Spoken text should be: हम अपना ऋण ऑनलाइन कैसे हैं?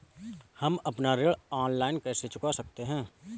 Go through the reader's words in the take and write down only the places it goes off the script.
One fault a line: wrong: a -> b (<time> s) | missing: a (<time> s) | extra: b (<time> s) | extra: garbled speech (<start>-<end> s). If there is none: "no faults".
extra: चुका सकते (2.2 s)